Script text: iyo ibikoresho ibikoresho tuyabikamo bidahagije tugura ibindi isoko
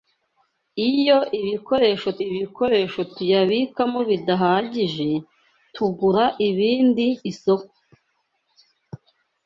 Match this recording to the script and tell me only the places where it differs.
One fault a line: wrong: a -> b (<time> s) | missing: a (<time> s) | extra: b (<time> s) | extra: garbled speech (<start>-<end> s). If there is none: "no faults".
no faults